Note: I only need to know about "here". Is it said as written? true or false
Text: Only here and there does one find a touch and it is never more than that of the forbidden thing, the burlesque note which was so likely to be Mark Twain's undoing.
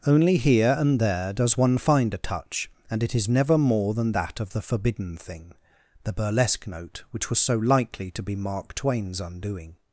true